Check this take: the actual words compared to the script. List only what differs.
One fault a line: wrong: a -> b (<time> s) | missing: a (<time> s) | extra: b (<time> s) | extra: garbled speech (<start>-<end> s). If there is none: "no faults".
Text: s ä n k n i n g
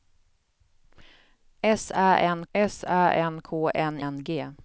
extra: s ä n (2.5 s)
missing: i (4.0 s)